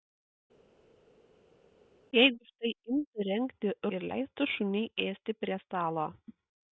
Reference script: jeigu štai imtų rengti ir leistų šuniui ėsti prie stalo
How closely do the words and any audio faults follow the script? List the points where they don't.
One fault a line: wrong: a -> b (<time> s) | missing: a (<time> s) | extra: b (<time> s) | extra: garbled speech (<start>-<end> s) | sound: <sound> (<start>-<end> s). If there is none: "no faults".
no faults